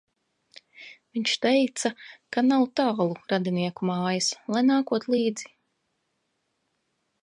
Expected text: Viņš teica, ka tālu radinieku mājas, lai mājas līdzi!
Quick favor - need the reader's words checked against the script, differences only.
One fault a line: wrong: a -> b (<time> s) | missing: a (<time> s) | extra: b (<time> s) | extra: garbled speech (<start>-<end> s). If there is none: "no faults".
extra: nav (2.5 s)
wrong: mājas -> nākot (4.7 s)